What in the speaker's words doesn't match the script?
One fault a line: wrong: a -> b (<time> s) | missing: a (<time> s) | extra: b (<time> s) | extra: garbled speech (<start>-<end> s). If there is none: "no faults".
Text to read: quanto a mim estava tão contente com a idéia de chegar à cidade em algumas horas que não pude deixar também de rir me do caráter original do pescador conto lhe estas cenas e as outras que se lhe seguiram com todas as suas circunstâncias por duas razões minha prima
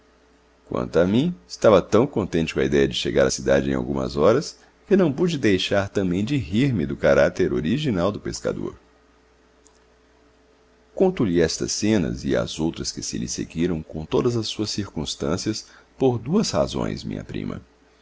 no faults